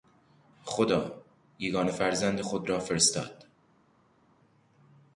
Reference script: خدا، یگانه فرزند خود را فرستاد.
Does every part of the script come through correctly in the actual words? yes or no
yes